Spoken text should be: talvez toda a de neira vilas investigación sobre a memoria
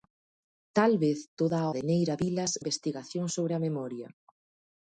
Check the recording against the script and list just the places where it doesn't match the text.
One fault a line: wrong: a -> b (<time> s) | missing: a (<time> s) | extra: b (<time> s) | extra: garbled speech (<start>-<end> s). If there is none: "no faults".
no faults